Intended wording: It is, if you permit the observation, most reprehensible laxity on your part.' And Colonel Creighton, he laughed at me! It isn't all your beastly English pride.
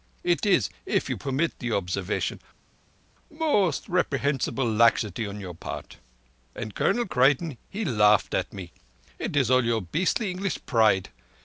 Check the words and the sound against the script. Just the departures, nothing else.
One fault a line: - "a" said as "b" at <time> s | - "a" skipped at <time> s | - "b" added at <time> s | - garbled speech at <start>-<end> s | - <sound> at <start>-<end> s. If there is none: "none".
- "isn't" said as "is" at 9.3 s